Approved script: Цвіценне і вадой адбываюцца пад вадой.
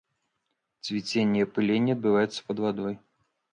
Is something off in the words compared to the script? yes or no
yes